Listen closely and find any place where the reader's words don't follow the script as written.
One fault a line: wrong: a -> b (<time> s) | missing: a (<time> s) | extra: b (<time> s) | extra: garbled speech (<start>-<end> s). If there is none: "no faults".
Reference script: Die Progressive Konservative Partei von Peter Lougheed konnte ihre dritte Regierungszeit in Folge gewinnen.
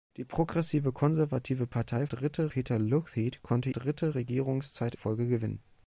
wrong: von -> dritte (2.1 s)
missing: ihre (3.7 s)
missing: in (4.9 s)